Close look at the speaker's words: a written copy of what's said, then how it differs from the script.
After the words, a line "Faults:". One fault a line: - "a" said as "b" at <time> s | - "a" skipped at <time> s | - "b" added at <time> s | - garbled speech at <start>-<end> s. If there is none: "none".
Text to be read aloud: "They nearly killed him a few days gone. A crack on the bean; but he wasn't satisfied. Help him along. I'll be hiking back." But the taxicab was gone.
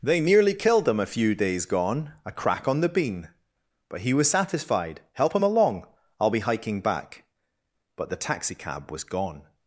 "They nearly killed him a few days gone. A crack on the bean; but he was satisfied. Help him along. I'll be hiking back." But the taxicab was gone.
Faults:
- "wasn't" said as "was" at 4.1 s